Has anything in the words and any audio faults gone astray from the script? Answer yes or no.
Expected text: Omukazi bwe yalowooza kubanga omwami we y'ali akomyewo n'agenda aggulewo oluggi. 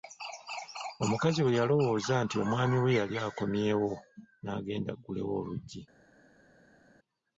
yes